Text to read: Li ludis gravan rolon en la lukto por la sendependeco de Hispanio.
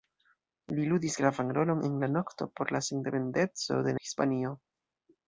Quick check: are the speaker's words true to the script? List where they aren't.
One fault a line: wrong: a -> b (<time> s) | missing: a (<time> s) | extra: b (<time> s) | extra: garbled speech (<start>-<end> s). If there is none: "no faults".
no faults